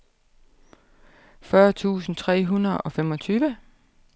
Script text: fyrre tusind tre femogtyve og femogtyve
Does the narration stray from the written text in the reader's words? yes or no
yes